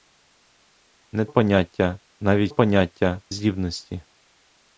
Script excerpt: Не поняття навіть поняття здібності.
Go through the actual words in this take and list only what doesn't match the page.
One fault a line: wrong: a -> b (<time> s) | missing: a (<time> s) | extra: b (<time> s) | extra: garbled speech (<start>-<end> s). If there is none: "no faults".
no faults